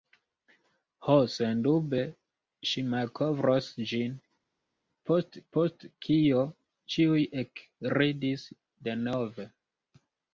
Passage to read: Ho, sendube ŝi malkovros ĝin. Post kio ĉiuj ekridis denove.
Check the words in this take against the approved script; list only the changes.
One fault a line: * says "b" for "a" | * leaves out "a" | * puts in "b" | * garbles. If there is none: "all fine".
* puts in "post"